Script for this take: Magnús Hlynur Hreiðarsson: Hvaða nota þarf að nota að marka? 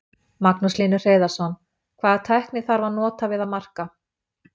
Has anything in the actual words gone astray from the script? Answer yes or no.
yes